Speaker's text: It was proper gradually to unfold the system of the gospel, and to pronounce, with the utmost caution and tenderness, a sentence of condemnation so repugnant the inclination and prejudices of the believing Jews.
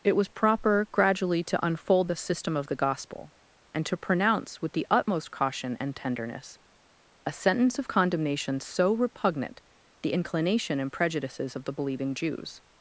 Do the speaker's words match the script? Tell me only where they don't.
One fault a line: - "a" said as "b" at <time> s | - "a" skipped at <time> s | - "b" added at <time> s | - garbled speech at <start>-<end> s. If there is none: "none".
none